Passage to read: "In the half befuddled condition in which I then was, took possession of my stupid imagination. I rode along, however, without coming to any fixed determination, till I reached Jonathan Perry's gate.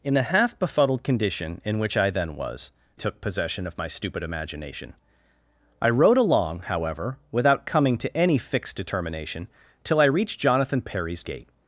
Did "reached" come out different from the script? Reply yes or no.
no